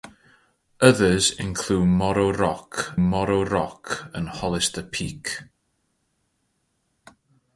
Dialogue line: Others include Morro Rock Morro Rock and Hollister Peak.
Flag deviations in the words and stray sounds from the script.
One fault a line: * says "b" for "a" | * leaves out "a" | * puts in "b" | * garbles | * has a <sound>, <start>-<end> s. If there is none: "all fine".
all fine